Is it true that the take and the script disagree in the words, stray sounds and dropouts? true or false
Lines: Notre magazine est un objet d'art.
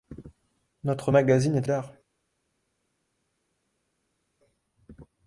true